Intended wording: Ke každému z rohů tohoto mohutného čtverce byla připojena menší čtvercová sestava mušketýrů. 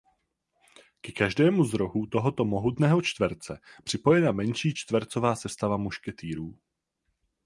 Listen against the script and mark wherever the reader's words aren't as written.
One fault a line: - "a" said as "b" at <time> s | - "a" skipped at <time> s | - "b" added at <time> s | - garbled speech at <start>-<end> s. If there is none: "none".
- "byla" skipped at 3.6 s